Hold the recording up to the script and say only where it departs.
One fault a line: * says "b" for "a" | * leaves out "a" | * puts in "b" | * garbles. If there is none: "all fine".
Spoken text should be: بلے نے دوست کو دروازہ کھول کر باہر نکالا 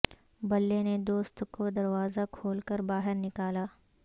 all fine